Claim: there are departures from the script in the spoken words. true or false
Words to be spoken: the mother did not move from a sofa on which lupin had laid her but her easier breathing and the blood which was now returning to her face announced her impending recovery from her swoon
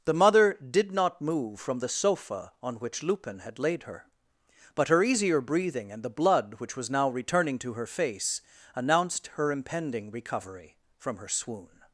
true